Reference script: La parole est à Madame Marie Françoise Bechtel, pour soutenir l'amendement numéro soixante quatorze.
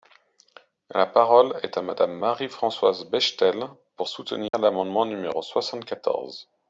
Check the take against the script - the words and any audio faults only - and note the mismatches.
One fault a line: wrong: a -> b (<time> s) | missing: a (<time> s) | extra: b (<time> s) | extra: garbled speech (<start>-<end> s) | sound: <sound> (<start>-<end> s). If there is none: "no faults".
sound: dropout (4.5-4.5 s)